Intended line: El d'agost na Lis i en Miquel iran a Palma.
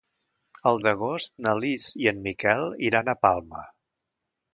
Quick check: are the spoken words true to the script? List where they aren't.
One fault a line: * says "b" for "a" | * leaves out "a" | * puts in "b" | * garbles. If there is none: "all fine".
all fine